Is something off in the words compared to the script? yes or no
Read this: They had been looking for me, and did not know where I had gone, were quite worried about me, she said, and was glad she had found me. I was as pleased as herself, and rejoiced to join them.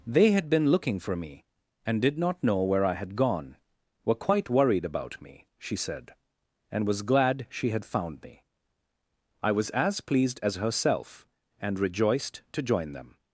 no